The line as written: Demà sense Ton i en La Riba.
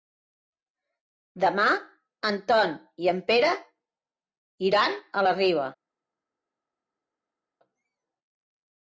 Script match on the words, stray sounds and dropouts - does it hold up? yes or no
no